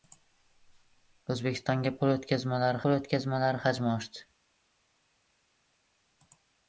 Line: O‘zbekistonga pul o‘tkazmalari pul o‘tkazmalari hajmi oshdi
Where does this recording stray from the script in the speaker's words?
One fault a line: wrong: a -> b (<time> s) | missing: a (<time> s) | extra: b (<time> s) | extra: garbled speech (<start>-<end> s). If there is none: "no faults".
no faults